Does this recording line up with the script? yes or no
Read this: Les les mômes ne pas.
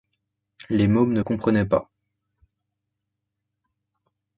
no